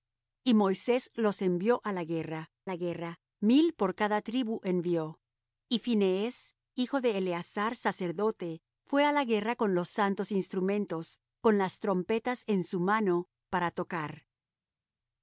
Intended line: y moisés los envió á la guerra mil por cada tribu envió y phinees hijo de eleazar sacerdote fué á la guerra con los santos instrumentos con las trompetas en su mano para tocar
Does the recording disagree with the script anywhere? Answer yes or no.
yes